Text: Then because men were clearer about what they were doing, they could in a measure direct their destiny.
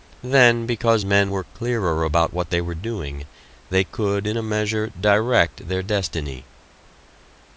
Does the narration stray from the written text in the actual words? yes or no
no